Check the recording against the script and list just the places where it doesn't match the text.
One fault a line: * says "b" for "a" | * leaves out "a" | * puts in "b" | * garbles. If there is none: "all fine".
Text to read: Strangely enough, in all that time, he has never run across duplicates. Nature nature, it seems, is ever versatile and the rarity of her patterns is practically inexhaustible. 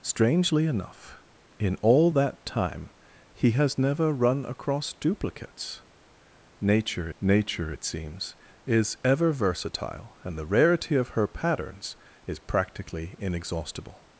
all fine